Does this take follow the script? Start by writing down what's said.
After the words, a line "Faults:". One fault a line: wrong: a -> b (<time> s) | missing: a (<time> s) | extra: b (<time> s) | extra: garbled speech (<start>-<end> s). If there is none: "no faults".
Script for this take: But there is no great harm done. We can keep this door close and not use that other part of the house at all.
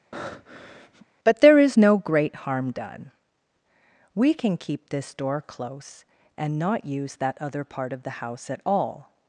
But there is no great harm done. We can keep this door close and not use that other part of the house at all.
Faults:
no faults